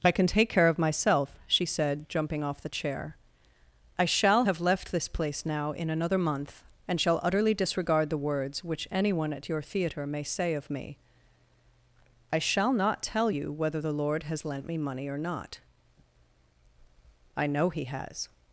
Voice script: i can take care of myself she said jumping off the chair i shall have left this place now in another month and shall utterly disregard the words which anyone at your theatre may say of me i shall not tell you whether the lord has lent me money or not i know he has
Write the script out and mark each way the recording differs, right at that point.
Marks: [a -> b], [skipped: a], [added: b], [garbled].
i can take care of myself she said jumping off the chair i shall have left this place now in another month and shall utterly disregard the words which anyone at your theatre may say of me i shall not tell you whether the lord has lent me money or not i know he has